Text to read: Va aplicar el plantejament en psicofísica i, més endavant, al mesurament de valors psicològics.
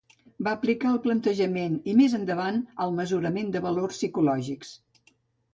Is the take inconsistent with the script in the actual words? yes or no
yes